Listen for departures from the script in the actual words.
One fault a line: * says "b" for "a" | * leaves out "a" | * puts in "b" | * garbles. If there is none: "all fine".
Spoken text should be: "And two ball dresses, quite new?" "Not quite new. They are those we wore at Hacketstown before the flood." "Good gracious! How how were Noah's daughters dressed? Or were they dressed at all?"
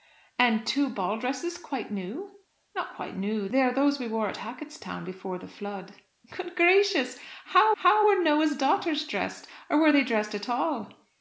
all fine